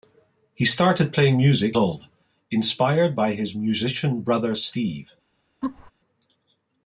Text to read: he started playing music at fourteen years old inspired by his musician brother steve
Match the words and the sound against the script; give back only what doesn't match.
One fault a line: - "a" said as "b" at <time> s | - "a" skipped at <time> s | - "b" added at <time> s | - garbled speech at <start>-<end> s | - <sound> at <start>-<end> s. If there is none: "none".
- "at fourteen years" skipped at 1.8 s
- laugh at 5.6-5.9 s